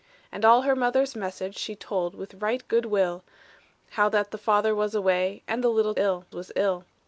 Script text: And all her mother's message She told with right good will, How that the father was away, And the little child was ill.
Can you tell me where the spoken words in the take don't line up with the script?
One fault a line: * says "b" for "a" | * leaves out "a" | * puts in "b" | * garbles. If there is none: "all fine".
* says "ill" for "child"